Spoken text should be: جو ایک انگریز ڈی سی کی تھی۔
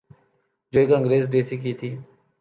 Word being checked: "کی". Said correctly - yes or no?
yes